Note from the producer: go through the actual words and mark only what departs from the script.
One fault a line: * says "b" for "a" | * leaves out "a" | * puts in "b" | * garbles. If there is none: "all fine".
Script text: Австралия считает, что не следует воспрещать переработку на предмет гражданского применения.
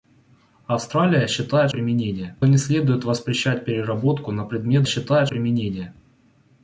* says "применения" for "что"
* says "считает" for "гражданского"